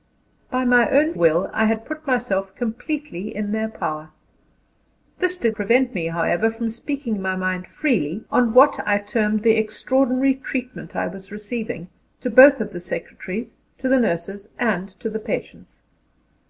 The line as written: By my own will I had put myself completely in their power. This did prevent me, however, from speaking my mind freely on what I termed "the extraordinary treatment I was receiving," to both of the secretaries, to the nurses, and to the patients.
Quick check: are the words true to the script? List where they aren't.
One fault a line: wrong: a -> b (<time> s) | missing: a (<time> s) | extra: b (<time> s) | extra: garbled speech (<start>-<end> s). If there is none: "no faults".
no faults